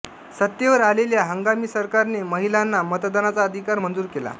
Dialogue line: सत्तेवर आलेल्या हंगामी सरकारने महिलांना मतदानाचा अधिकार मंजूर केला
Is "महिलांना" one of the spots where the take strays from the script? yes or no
no